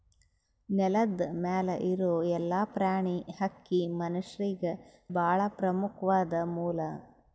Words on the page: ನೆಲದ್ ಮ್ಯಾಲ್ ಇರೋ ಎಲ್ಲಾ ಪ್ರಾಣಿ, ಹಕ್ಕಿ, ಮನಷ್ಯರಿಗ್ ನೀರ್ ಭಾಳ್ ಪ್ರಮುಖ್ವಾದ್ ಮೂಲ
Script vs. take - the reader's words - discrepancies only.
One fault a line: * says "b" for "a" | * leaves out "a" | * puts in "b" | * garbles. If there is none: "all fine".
* leaves out "ನೀರ್"